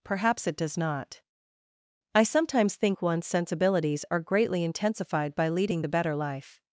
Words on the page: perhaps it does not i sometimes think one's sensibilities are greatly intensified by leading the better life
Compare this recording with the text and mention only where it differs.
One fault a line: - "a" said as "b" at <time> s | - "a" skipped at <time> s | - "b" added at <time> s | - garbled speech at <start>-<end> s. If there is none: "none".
none